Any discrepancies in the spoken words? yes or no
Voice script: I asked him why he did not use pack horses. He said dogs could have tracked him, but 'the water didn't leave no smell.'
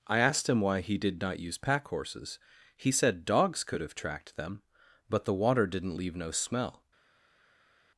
yes